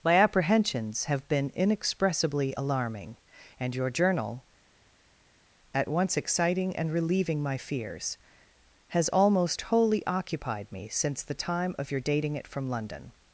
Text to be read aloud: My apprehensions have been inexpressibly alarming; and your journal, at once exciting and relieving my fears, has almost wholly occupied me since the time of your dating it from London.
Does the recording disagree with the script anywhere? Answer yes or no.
no